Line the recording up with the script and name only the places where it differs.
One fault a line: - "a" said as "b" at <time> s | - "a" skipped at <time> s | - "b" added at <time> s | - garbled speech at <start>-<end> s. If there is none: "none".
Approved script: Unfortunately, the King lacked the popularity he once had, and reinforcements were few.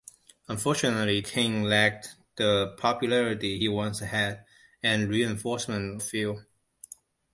- "the" skipped at 1.2 s
- "were" skipped at 6.0 s